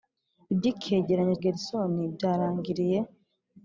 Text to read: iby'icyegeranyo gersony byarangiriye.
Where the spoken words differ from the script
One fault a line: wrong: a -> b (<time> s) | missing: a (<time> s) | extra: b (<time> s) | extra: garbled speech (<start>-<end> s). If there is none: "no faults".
no faults